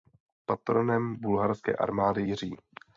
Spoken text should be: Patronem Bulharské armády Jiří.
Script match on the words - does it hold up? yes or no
yes